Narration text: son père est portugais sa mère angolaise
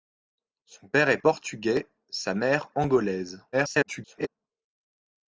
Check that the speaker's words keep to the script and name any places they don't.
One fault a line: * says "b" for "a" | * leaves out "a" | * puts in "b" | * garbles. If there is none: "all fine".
* garbles